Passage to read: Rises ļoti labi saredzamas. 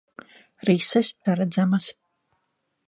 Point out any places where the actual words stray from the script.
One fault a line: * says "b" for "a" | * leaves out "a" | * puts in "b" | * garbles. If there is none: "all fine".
* leaves out "ļoti labi"